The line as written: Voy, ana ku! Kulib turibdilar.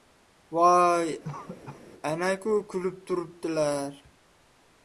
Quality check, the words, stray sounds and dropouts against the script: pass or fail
fail